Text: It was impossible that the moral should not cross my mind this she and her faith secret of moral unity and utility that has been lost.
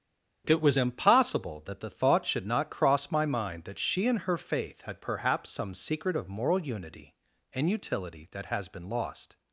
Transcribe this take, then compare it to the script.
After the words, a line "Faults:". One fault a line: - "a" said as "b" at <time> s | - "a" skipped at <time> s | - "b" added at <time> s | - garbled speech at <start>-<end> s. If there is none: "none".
It was impossible that the thought should not cross my mind that she and her faith had perhaps some secret of moral unity and utility that has been lost.
Faults:
- "moral" said as "thought" at 1.9 s
- "this" said as "that" at 3.6 s
- "had perhaps some" added at 4.8 s